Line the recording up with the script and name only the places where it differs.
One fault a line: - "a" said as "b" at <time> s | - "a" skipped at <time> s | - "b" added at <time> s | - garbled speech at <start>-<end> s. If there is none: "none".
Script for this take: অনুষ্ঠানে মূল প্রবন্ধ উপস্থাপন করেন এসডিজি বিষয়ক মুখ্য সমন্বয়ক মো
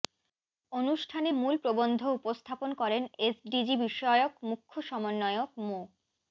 none